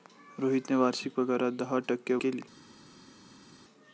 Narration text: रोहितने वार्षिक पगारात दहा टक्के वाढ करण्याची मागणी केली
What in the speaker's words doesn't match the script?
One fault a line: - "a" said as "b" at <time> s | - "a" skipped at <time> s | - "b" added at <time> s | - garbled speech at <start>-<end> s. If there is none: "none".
- "वाढ करण्याची मागणी" skipped at 2.1 s